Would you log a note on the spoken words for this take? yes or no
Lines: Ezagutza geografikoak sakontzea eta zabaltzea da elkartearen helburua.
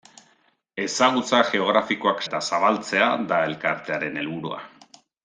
yes